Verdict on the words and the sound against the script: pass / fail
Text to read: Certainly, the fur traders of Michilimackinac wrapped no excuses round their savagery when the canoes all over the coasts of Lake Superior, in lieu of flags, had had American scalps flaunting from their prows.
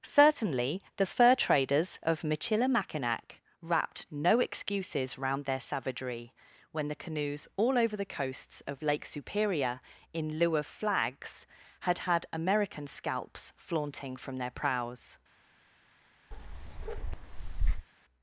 fail